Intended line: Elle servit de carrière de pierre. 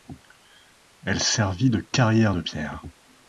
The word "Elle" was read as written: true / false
true